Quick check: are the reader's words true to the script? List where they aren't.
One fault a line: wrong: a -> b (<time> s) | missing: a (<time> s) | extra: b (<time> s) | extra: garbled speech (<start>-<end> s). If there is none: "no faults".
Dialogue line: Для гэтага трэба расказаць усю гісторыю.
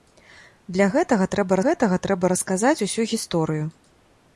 extra: гэтага трэба (1.7 s)